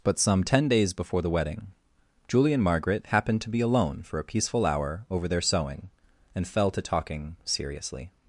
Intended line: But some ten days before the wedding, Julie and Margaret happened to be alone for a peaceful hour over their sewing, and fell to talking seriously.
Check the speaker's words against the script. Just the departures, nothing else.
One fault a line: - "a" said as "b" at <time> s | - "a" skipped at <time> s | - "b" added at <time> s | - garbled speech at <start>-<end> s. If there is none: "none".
none